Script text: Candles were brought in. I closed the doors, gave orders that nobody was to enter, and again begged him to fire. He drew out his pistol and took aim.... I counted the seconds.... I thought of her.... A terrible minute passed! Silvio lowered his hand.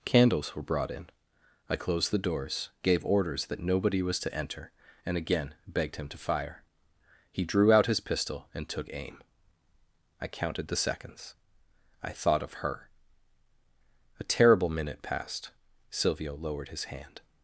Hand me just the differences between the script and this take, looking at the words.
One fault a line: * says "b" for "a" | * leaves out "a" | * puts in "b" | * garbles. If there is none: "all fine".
all fine